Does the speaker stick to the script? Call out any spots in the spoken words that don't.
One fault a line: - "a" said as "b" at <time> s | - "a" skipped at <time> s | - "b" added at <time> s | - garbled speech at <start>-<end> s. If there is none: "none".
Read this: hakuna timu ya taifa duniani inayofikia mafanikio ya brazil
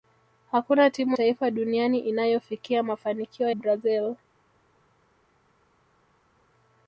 - "ya" skipped at 1.2 s
- "ya" skipped at 3.5 s